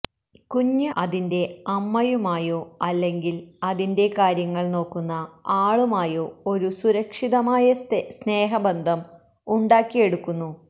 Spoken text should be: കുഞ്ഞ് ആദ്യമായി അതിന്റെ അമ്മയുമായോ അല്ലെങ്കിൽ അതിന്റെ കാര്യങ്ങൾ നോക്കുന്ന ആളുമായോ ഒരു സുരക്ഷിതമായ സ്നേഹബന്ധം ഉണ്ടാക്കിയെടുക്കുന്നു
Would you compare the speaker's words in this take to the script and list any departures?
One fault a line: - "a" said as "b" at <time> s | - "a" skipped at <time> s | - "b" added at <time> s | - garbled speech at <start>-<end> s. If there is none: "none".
- "ആദ്യമായി" skipped at 0.9 s